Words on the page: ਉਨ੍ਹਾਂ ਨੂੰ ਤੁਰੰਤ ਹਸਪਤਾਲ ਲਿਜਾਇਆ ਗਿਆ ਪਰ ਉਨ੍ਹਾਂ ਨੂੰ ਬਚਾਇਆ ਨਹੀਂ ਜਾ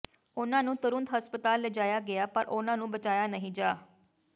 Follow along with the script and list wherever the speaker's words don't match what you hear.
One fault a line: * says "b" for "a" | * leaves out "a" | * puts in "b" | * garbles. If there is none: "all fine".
all fine